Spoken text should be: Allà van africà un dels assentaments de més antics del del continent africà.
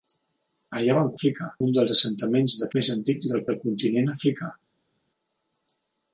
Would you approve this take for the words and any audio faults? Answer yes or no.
yes